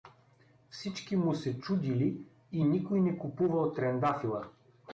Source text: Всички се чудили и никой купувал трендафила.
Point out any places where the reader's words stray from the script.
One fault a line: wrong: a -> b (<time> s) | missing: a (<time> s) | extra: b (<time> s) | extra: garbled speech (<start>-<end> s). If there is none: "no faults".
extra: му (1.1 s)
extra: не (3.0 s)